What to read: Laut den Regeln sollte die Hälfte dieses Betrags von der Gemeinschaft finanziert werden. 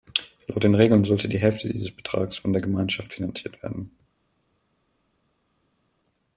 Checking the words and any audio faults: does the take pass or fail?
pass